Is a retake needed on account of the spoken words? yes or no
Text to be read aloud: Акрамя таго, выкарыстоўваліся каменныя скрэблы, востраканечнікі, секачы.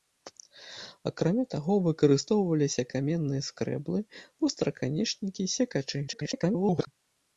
yes